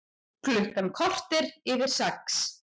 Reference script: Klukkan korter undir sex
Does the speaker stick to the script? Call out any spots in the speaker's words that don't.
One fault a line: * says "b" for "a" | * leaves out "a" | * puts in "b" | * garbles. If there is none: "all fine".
* says "yfir" for "undir"